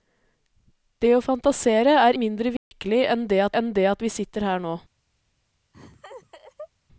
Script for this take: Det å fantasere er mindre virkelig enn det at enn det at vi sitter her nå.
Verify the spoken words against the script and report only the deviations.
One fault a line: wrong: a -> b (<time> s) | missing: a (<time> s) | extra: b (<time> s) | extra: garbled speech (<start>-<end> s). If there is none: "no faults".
no faults